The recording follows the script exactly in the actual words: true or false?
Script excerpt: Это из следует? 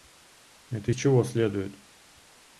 false